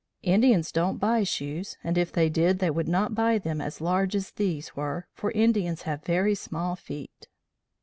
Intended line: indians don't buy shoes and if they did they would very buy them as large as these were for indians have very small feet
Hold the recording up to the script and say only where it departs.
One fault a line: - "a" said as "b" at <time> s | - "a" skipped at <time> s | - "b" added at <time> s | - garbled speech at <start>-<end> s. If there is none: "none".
- "very" said as "not" at 2.9 s